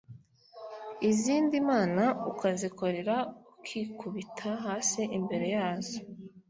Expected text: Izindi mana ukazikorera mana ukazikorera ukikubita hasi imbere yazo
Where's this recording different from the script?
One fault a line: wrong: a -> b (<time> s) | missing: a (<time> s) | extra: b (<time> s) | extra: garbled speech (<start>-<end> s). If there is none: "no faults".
missing: mana ukazikorera (3.1 s)